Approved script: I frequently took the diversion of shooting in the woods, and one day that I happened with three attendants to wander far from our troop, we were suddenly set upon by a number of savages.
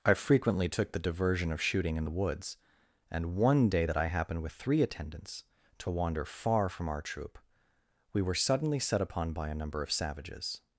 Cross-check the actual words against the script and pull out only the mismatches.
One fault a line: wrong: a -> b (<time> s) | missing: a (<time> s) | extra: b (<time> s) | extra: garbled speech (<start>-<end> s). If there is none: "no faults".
no faults